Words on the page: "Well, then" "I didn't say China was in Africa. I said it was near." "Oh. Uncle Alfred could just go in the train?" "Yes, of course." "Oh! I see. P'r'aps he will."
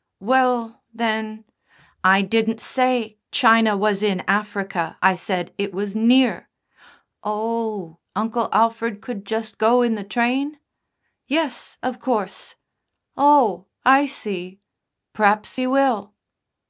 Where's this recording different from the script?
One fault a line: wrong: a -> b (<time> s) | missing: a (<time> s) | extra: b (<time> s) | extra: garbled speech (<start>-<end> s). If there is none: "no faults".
no faults